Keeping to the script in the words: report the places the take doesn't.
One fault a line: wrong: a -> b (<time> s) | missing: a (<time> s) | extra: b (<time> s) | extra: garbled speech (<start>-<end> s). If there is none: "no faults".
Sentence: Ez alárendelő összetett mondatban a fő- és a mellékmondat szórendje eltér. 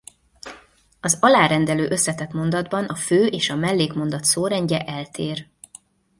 wrong: Ez -> Az (1.0 s)